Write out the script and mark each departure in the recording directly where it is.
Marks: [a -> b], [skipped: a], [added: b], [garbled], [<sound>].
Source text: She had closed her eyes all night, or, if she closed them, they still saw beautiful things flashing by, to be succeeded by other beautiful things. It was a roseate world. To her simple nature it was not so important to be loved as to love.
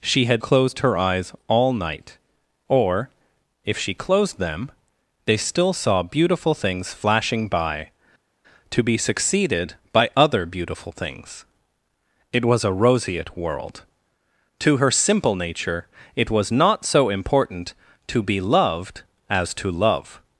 She had closed her eyes all night, or, if she closed them, they still saw beautiful things flashing by, to be succeeded by other beautiful things. It was a roseate world. To her simple nature it was not so important to be loved as to love.